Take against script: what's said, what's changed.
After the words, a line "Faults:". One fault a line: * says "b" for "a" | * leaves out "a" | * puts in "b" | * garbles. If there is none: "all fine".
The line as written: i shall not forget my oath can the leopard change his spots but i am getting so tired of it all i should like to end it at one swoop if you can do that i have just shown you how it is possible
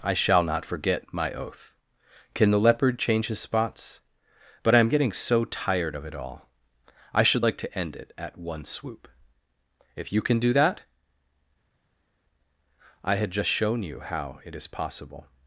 i shall not forget my oath can the leopard change his spots but i am getting so tired of it all i should like to end it at one swoop if you can do that i had just shown you how it is possible
Faults:
* says "had" for "have"